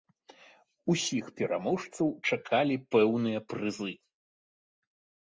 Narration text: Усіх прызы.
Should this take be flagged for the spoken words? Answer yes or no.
yes